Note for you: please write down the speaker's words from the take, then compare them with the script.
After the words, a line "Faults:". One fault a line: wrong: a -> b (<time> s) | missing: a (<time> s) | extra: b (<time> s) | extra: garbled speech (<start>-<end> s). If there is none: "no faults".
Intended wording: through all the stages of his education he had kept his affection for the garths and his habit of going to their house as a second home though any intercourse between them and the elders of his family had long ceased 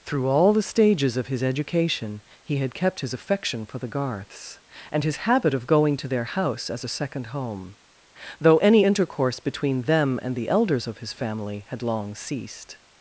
through all the stages of his education he had kept his affection for the garths and his habit of going to their house as a second home though any intercourse between them and the elders of his family had long ceased
Faults:
no faults